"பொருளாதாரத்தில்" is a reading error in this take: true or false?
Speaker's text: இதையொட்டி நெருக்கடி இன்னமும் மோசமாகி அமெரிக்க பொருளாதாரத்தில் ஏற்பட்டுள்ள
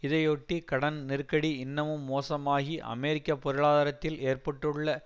false